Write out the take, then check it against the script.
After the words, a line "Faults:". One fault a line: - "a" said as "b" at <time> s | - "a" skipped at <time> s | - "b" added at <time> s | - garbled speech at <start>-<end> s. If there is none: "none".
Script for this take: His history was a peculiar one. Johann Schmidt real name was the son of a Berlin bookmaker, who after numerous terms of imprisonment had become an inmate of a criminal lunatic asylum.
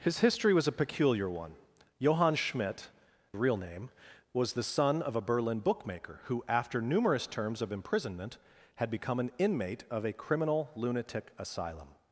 His history was a peculiar one. Johann Schmidt real name was the son of a Berlin bookmaker, who after numerous terms of imprisonment had become an inmate of a criminal lunatic asylum.
Faults:
none